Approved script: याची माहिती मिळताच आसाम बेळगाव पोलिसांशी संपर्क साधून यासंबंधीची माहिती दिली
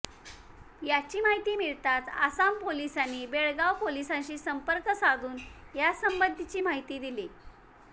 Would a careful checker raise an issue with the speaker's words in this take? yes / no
yes